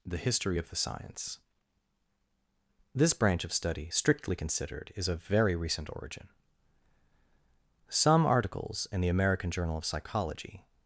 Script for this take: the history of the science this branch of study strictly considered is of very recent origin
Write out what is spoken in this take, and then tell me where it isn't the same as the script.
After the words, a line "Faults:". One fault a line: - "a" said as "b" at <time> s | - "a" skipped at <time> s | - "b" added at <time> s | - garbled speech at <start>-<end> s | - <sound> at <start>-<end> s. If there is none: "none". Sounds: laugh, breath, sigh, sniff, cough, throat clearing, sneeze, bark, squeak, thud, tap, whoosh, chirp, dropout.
the history of the science this branch of study strictly considered is of very recent origin some articles in the american journal of psychology
Faults:
- "some articles in the american journal of psychology" added at 7.9 s